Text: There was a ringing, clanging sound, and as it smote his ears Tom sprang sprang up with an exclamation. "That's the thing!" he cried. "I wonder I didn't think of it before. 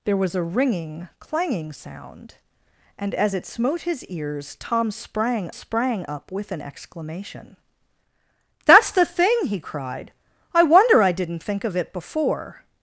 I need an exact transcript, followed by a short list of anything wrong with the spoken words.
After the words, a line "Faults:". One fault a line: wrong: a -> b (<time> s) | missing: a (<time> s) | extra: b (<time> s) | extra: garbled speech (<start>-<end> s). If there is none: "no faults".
There was a ringing, clanging sound, and as it smote his ears Tom sprang sprang up with an exclamation. "That's the thing!" he cried. "I wonder I didn't think of it before.
Faults:
no faults